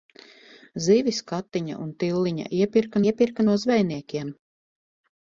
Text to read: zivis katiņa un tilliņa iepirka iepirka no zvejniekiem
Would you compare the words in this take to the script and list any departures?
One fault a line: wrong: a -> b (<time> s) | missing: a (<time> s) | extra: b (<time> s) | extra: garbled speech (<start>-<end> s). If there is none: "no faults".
no faults